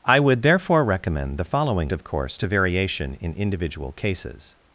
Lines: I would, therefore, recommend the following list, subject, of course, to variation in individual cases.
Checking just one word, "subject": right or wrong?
wrong